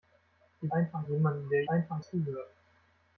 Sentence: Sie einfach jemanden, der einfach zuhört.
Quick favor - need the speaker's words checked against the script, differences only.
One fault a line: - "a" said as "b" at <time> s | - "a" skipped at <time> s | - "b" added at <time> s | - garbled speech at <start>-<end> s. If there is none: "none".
none